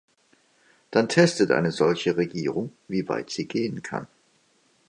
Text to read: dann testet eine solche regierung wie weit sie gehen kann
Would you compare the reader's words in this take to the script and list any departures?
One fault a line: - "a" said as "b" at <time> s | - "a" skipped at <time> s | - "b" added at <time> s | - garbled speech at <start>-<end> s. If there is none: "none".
none